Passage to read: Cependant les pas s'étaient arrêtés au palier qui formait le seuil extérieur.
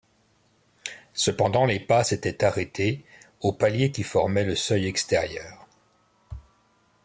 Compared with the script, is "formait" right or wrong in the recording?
right